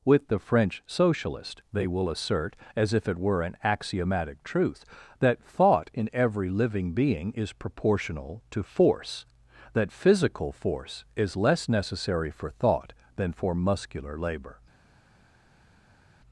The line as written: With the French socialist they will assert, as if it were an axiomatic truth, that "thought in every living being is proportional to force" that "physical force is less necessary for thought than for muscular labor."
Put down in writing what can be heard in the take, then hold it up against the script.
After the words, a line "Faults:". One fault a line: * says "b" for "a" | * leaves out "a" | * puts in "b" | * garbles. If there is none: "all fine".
With the French socialist they will assert, as if it were an axiomatic truth, that "thought in every living being is proportional to force" that "physical force is less necessary for thought than for muscular labor."
Faults:
all fine